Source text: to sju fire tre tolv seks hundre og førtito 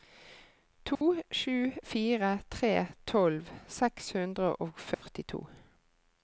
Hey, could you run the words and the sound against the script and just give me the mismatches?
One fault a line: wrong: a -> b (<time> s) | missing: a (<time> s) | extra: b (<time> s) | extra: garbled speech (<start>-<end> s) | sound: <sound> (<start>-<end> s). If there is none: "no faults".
sound: dropout (0.9-1.0 s)
sound: dropout (4.9-5.0 s)